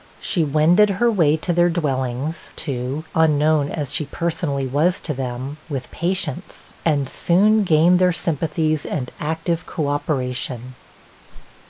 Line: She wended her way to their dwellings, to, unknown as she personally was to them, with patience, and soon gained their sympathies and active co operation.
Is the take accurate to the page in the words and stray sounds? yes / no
no